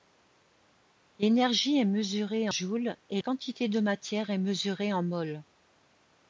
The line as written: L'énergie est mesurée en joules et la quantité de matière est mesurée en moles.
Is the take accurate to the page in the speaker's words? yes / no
no